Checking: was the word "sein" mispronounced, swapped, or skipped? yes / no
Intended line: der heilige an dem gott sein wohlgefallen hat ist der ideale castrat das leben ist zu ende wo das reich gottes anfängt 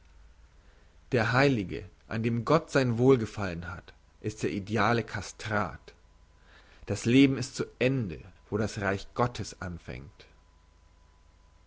no